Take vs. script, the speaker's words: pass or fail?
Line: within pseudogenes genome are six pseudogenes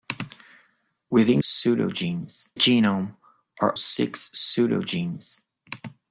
pass